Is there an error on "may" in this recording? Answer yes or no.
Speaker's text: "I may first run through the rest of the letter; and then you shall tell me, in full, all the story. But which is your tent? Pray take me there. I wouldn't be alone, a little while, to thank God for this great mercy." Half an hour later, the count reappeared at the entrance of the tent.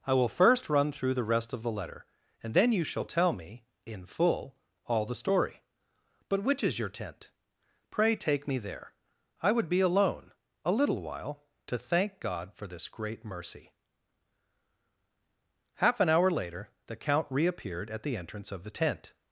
yes